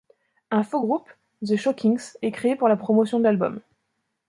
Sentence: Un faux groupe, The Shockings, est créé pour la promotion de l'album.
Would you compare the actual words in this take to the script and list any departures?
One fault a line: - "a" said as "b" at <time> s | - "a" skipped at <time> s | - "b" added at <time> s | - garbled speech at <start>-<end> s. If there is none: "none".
none